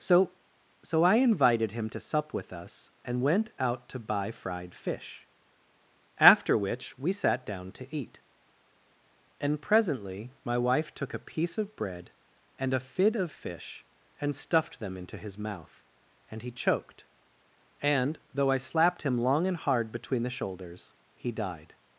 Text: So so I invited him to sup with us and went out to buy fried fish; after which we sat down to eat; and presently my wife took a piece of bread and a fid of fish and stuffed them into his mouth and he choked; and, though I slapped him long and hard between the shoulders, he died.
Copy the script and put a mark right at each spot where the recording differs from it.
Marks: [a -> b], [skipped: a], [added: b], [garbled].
So so I invited him to sup with us and went out to buy fried fish; after which we sat down to eat; and presently my wife took a piece of bread and a fid of fish and stuffed them into his mouth and he choked; and, though I slapped him long and hard between the shoulders, he died.